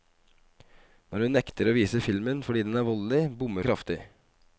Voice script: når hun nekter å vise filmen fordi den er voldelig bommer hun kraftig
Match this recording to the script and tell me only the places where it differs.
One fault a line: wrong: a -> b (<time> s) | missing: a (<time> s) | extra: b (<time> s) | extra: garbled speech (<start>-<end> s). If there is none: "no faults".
missing: hun (3.7 s)